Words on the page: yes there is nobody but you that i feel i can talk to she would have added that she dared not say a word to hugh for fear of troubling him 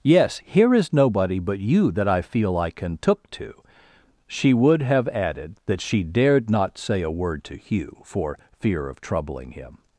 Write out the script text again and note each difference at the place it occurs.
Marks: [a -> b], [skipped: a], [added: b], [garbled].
yes [there -> here] is nobody but you that i feel i can [talk -> took] to she would have added that she dared not say a word to hugh for fear of troubling him